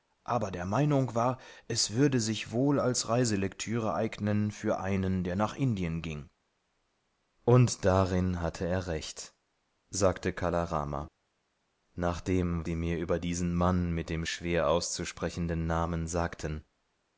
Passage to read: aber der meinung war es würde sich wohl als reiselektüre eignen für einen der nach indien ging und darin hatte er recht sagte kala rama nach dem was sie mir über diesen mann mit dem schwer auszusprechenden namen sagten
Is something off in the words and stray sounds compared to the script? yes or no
yes